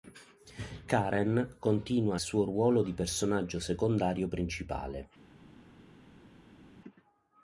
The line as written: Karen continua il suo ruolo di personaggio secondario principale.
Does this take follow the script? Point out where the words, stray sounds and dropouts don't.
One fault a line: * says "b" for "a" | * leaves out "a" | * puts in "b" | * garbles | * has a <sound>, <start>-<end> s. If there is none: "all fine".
* leaves out "il"